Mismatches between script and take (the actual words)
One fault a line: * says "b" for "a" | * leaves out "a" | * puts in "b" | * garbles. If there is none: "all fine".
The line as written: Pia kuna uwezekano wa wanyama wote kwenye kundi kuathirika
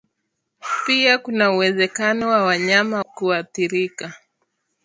* leaves out "wote kwenye kundi"